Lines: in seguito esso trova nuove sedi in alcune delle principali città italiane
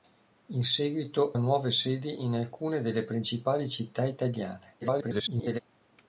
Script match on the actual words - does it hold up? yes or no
no